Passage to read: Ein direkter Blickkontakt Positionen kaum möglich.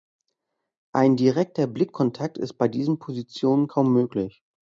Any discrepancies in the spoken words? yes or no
yes